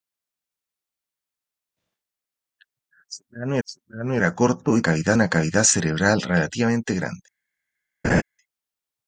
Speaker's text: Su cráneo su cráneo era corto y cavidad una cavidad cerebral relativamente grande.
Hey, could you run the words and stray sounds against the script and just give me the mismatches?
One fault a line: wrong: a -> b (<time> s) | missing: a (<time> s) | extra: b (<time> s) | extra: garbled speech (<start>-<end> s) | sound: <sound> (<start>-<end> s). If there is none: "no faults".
sound: laugh (8.0-8.2 s)